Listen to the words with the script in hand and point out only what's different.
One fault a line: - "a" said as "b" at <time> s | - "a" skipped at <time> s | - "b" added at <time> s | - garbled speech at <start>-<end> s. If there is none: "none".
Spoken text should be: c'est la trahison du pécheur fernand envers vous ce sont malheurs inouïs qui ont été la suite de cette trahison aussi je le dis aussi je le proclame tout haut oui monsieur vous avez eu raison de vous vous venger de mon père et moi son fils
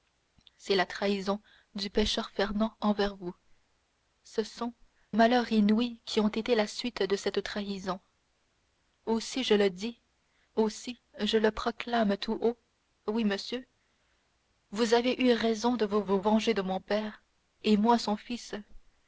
none